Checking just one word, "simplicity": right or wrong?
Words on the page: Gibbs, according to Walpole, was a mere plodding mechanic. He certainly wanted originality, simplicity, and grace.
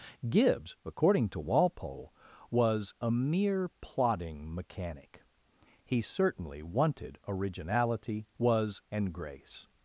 wrong